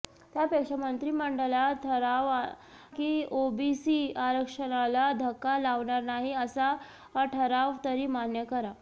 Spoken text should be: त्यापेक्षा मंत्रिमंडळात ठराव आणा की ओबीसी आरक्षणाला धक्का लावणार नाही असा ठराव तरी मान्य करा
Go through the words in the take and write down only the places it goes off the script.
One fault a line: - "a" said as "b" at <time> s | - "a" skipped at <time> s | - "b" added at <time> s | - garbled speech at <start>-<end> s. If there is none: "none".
- "आणा" skipped at 2.3 s